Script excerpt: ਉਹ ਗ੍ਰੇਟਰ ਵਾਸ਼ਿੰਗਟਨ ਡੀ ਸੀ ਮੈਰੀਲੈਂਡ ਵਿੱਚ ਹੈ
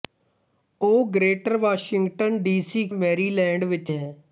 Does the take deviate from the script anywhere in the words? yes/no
no